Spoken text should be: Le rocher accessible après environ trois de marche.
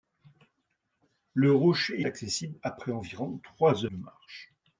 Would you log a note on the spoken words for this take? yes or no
no